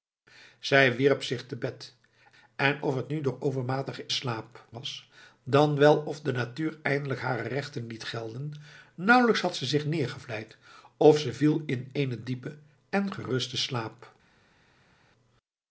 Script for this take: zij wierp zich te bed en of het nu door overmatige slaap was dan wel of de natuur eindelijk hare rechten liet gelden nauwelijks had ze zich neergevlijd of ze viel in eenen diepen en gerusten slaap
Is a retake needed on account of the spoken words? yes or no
no